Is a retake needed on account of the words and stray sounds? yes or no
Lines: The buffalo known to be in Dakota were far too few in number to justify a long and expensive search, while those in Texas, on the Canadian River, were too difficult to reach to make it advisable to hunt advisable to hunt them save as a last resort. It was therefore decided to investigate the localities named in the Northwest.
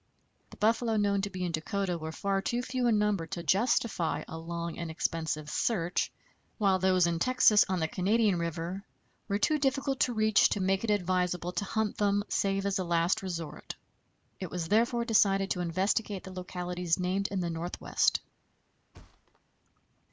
yes